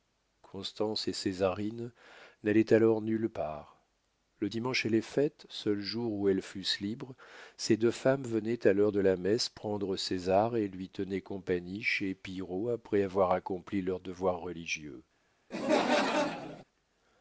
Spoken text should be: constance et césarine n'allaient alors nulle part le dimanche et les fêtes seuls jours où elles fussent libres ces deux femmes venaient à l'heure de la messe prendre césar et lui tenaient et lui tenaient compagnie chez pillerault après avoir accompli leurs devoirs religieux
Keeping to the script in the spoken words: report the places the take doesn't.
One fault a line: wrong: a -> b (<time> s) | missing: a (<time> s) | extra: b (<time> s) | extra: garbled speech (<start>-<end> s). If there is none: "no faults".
missing: et lui tenaient (11.2 s)